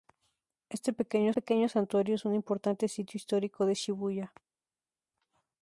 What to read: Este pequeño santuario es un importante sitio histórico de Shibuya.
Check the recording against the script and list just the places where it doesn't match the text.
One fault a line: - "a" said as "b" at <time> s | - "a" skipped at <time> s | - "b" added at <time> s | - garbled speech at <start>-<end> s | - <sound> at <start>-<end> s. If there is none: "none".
- "pequeño" added at 1.3 s